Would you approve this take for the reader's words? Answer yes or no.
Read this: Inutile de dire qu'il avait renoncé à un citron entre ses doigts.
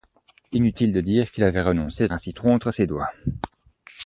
yes